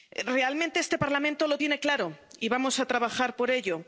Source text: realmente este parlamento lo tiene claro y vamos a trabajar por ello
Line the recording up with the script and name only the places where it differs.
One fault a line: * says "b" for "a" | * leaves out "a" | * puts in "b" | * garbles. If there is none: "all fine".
all fine